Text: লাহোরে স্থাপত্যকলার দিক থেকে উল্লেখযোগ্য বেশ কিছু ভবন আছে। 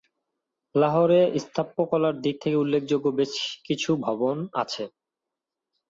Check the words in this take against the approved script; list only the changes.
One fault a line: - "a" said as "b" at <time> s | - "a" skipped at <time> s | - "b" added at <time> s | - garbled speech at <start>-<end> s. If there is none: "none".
none